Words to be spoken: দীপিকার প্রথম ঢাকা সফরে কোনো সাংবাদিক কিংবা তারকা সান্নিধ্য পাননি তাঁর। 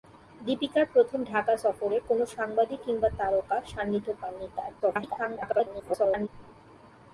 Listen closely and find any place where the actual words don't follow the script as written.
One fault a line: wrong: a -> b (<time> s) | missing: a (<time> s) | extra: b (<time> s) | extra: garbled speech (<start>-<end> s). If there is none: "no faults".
extra: garbled speech (4.8-6.3 s)